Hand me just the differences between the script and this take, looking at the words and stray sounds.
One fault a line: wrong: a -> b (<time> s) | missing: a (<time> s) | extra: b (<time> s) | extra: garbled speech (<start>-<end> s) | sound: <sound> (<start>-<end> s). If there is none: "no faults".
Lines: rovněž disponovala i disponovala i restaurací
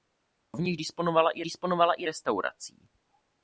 no faults